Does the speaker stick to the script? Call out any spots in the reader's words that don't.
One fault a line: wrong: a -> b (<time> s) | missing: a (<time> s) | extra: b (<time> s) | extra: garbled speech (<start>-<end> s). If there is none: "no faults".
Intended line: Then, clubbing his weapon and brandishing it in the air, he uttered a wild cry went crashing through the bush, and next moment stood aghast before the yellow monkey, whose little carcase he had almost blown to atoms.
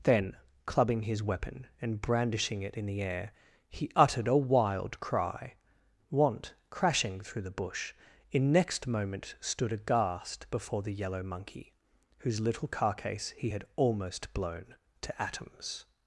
wrong: went -> want (6.1 s)
wrong: and -> in (8.3 s)